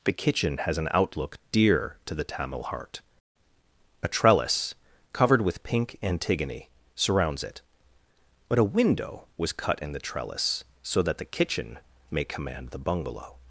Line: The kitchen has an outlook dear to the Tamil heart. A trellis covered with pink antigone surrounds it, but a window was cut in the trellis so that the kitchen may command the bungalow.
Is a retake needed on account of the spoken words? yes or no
no